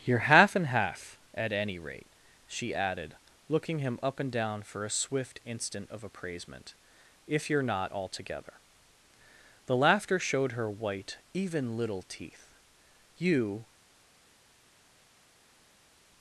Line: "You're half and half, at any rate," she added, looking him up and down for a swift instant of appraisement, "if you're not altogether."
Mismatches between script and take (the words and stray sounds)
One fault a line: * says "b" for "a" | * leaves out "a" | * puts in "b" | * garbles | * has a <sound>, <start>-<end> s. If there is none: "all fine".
* puts in "The laughter showed her white even little teeth You"